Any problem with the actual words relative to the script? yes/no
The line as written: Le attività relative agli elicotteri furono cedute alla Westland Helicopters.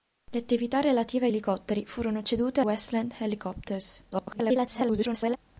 yes